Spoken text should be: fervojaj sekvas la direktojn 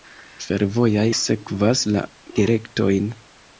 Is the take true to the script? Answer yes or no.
yes